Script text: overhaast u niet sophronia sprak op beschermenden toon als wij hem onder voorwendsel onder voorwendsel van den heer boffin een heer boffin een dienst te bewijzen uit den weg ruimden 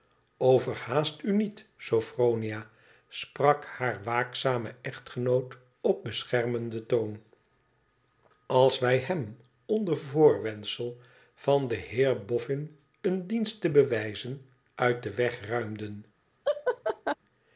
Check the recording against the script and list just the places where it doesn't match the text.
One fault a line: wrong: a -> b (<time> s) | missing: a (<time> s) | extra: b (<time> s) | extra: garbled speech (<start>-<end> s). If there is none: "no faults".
extra: haar waakzame echtgenoot (3.6 s)
missing: onder voorwendsel (11.0 s)
missing: heer boffin een (13.3 s)